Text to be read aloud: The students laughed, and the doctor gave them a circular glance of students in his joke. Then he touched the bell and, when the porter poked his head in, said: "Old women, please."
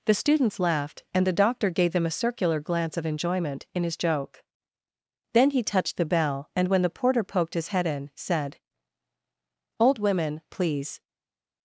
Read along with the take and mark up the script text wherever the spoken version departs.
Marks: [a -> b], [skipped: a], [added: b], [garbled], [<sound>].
The students laughed, and the doctor gave them a circular glance of [students -> enjoyment] in his joke. Then he touched the bell and, when the porter poked his head in, said: "Old women, please."